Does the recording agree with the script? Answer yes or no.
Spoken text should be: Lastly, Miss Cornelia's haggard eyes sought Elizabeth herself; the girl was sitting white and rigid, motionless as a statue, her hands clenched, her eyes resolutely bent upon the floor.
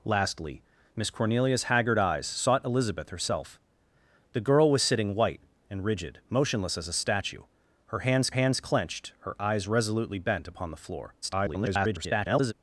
no